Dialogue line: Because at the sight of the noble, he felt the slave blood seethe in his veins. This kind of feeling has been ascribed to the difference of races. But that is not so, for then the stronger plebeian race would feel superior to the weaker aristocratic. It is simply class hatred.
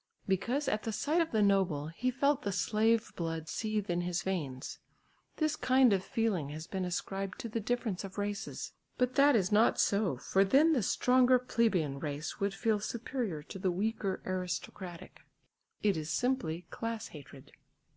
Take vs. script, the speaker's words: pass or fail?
pass